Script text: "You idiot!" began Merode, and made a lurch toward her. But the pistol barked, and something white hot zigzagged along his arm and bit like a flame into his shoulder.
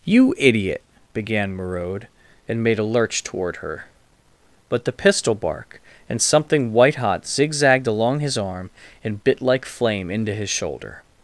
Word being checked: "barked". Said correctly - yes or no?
no